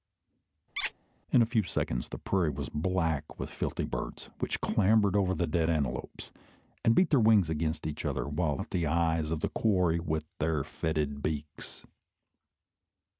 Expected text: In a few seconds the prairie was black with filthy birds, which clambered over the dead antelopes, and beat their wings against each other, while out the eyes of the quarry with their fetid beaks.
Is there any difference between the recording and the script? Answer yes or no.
no